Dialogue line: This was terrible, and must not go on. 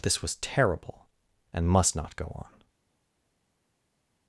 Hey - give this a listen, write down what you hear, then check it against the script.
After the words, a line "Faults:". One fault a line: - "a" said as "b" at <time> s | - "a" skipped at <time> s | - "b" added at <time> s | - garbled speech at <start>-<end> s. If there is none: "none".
This was terrible, and must not go on.
Faults:
none